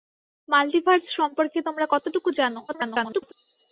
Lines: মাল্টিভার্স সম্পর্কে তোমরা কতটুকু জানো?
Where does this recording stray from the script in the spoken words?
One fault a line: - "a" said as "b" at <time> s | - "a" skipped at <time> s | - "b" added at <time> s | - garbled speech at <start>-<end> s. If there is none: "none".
- garbled speech at 2.7-3.3 s